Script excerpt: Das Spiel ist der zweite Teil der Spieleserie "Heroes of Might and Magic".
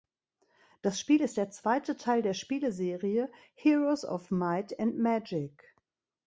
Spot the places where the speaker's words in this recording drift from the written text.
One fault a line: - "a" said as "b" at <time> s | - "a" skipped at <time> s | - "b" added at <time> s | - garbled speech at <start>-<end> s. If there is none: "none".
none